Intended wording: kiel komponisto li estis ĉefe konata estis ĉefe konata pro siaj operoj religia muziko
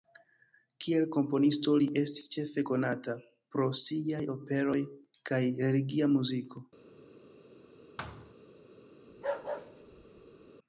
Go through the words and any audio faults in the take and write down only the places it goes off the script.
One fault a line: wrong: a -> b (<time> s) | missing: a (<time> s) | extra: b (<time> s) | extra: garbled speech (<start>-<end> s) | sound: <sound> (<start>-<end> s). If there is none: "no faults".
missing: estis ĉefe konata (3.2 s)
extra: kaj (5.3 s)
sound: thud (8.0-8.4 s)
sound: bark (9.1-10.5 s)